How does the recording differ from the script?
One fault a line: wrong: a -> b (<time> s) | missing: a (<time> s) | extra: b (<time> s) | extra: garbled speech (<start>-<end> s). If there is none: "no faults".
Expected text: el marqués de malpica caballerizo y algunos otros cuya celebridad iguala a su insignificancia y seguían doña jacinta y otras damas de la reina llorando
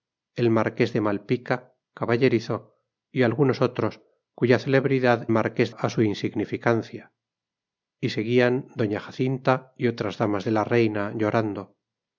wrong: iguala -> marqués (5.4 s)